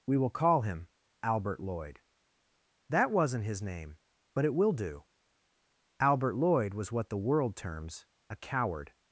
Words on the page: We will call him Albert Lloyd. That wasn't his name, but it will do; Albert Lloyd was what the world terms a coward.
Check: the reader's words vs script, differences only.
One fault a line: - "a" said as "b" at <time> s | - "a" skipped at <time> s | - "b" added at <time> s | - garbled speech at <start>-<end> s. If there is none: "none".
none